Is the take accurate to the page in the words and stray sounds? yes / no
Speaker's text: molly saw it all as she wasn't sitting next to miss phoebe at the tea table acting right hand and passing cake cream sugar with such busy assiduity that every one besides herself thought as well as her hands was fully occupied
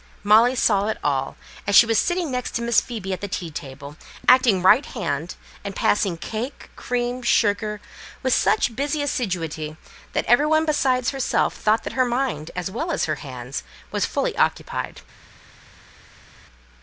no